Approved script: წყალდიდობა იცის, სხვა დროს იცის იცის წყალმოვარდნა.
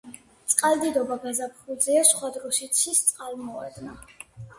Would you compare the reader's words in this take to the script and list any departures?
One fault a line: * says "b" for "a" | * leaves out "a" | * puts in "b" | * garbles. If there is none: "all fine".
* says "გაზაფხულზეა" for "იცის"
* leaves out "იცის"